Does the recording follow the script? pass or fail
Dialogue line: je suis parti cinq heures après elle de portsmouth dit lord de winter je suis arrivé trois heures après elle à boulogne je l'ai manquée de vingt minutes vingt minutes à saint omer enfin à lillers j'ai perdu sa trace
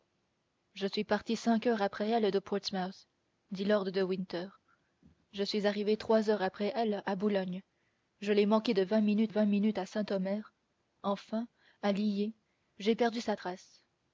pass